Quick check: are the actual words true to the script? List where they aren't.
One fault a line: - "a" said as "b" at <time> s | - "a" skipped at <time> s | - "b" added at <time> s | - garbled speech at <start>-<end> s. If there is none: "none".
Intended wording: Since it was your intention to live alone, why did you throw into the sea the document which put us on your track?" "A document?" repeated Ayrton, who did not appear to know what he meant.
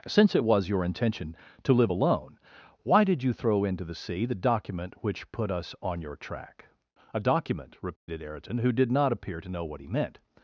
none